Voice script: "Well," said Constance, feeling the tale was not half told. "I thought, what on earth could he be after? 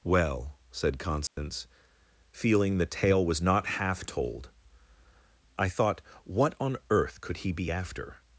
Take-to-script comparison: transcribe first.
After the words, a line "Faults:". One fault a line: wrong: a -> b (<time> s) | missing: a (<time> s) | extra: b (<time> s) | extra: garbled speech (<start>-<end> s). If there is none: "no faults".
"Well," said Constance, feeling the tale was not half told. "I thought, what on earth could he be after?
Faults:
no faults